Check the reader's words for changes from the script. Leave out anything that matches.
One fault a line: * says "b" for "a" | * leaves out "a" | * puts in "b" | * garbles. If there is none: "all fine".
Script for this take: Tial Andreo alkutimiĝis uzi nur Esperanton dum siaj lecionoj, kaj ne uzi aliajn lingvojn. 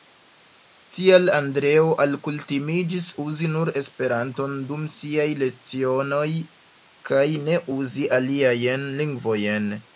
all fine